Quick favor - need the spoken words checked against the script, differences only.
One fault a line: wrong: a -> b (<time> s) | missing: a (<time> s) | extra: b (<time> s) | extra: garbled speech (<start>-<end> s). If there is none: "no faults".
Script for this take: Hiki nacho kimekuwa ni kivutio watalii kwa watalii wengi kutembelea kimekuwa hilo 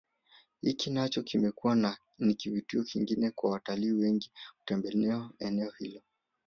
wrong: watalii -> kingine (2.8 s)
wrong: kimekuwa -> eneo (5.4 s)